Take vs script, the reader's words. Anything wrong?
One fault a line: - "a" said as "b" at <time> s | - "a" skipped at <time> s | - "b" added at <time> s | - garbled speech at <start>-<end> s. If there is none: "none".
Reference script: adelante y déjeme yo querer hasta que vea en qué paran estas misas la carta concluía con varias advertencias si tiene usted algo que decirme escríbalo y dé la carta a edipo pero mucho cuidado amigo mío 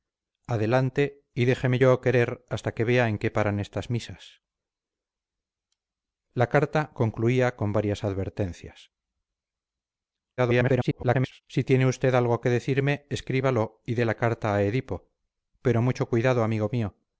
- garbled speech at 10.4-11.4 s